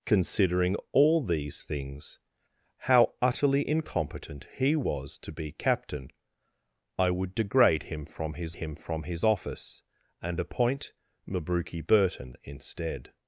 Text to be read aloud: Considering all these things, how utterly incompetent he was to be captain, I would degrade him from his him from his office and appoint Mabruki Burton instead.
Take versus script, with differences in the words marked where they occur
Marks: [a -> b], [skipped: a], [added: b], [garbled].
Considering all these things, how utterly incompetent he was to be captain, I would degrade him from his him from his office and appoint Mabruki Burton instead.